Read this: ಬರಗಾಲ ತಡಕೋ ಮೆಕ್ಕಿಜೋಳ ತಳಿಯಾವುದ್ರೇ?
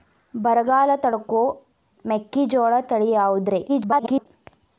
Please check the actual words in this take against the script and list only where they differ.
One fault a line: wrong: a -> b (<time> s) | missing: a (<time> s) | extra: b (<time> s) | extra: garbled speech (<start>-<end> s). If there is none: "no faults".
extra: garbled speech (3.7-4.3 s)